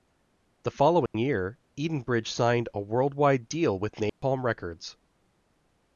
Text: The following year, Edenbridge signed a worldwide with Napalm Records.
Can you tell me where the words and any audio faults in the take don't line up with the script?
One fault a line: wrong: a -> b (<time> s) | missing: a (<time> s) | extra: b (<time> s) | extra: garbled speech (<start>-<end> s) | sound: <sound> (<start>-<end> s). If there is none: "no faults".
sound: dropout (1.1-1.1 s)
extra: deal (3.5 s)
sound: dropout (4.1-4.2 s)